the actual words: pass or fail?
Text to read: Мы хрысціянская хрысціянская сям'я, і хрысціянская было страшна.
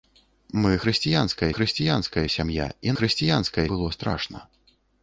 pass